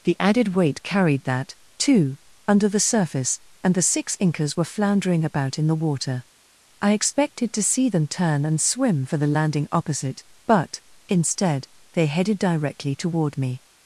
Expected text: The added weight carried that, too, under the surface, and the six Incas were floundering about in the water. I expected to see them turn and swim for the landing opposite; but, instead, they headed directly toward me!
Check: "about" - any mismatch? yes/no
no